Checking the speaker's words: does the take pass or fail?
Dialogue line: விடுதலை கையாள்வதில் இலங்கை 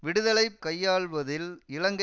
pass